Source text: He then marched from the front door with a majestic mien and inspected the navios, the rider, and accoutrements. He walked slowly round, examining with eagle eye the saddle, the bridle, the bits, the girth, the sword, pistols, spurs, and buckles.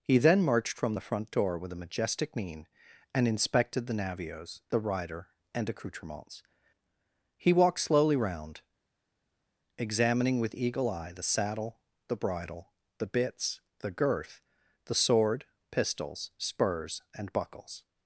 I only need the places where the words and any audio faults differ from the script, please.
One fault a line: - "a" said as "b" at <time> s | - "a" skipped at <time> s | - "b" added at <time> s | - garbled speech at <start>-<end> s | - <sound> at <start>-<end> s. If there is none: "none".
none